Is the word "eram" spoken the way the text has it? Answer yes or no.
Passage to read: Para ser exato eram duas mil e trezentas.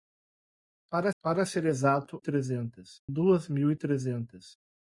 no